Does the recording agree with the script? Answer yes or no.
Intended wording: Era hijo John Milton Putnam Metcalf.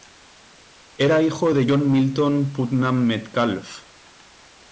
no